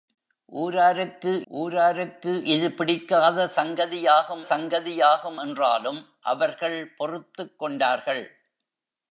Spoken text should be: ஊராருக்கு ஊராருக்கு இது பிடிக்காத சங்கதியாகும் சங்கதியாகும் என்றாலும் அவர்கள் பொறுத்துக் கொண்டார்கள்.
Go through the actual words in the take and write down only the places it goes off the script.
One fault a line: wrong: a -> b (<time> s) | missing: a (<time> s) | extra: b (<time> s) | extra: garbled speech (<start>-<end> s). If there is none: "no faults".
no faults